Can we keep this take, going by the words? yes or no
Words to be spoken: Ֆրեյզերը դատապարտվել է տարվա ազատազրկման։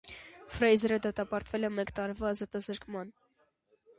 no